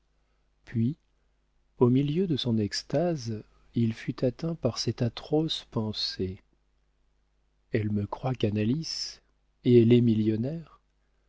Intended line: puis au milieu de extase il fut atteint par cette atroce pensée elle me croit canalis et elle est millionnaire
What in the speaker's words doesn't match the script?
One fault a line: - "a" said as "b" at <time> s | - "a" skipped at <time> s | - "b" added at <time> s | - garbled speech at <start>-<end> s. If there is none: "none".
- "son" added at 2.4 s